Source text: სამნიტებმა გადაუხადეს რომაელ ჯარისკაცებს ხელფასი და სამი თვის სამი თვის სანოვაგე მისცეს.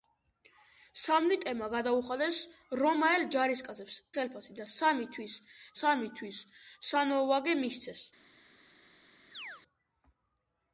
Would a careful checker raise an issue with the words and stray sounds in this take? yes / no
yes